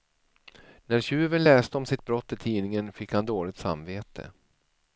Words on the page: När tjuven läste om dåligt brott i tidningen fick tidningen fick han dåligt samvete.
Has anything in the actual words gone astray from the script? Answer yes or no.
yes